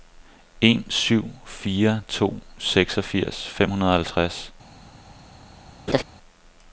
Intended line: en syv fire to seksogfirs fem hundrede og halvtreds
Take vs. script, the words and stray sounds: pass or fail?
fail